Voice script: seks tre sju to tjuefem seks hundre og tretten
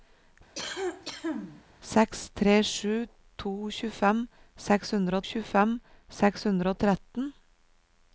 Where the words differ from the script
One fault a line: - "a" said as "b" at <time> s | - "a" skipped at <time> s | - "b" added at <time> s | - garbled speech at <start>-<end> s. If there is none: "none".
- "tjuefem seks hundre" added at 5.3 s